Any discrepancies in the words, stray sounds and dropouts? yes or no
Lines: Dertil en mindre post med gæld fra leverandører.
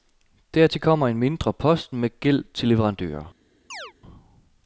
yes